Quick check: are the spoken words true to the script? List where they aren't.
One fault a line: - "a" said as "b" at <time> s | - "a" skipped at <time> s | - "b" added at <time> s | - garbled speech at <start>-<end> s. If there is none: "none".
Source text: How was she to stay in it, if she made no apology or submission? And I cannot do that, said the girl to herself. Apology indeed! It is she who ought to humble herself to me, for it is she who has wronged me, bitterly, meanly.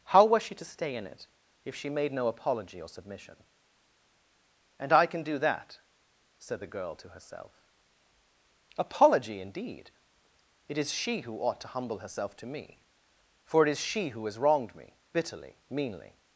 - "cannot" said as "can" at 5.0 s